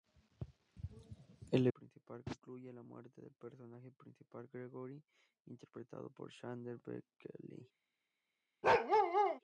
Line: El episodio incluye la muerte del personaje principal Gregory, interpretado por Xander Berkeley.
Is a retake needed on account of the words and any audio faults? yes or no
yes